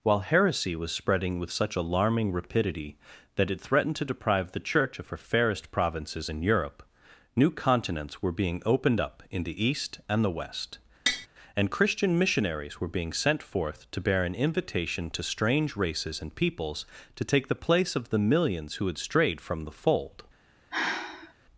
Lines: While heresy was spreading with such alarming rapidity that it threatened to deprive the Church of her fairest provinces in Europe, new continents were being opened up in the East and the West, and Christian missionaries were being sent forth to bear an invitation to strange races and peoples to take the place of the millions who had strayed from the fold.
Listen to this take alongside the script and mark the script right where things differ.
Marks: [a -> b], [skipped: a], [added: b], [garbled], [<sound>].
While heresy was spreading with such alarming rapidity that it threatened to deprive the Church of her fairest provinces in Europe, new continents were being opened up in the East and the West, [tap] and Christian missionaries were being sent forth to bear an invitation to strange races and peoples to take the place of the millions who had strayed from the fold. [sigh]